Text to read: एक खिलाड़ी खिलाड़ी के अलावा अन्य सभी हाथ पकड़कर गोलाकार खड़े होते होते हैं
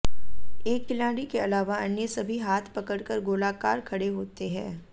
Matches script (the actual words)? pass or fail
fail